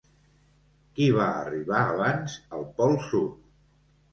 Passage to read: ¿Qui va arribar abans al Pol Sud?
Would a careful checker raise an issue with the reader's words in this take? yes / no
no